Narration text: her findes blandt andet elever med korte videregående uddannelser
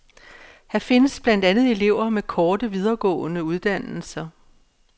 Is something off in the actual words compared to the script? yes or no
no